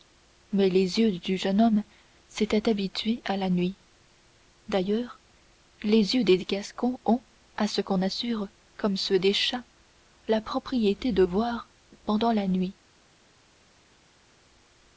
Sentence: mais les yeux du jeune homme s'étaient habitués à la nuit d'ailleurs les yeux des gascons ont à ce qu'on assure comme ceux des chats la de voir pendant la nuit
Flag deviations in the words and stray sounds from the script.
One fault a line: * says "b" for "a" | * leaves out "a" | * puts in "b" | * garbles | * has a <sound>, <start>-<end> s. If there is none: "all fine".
* puts in "propriété"